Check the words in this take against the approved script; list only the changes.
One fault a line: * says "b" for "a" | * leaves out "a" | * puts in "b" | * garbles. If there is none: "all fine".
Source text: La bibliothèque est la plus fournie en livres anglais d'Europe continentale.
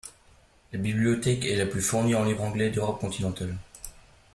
all fine